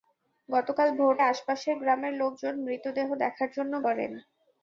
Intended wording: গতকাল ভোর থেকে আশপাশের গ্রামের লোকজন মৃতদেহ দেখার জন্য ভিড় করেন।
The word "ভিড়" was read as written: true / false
false